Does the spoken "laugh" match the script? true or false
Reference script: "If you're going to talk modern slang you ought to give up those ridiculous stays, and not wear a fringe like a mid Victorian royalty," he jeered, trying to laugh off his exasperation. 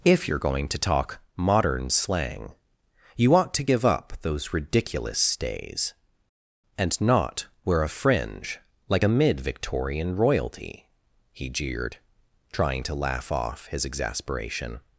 true